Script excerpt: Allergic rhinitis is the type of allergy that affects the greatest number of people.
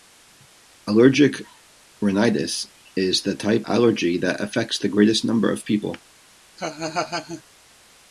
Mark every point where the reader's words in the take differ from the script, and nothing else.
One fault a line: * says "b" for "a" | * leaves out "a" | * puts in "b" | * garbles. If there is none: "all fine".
* leaves out "of"